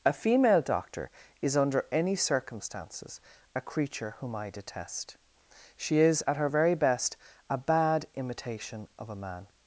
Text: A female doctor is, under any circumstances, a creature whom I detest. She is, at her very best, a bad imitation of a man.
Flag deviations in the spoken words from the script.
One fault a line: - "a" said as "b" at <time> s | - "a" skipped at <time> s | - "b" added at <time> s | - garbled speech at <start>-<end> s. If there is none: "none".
none